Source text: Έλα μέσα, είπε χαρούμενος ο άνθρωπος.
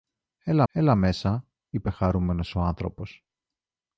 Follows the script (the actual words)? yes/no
no